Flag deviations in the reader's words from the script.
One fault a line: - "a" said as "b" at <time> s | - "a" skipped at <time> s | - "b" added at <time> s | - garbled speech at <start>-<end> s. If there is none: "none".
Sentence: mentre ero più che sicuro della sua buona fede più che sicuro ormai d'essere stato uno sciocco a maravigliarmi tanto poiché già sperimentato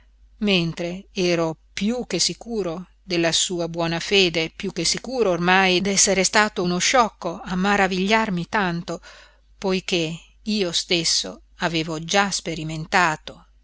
- "io stesso avevo" added at 10.4 s